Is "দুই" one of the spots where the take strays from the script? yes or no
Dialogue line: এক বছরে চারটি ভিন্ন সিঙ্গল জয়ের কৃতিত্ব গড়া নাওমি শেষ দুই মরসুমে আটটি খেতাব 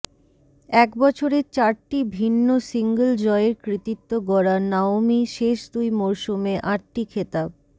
no